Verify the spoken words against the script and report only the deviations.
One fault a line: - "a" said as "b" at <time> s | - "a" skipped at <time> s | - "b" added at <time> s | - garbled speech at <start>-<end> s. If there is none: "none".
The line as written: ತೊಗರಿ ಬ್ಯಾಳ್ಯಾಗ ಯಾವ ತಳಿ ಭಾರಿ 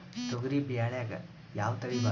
none